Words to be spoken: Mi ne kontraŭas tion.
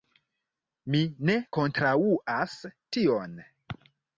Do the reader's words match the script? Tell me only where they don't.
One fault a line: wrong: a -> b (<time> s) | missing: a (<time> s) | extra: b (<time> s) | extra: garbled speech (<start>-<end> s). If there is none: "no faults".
no faults